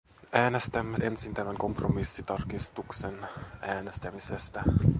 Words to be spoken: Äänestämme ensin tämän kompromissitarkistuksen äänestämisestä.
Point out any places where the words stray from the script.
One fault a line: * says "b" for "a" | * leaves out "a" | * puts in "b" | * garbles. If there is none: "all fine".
all fine